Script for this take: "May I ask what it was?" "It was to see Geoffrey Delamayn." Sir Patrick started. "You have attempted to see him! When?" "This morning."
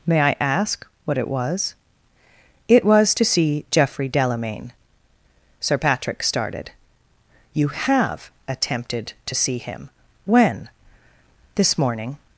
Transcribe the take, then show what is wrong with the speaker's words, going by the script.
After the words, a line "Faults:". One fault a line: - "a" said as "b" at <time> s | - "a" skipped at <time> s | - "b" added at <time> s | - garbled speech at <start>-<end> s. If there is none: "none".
"May I ask what it was?" "It was to see Geoffrey Delamayn." Sir Patrick started. "You have attempted to see him! When?" "This morning."
Faults:
none